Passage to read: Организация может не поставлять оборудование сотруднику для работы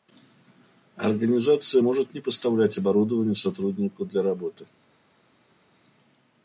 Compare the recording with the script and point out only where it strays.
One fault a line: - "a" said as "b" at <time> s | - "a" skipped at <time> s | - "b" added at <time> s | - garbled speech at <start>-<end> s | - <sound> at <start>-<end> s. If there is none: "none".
none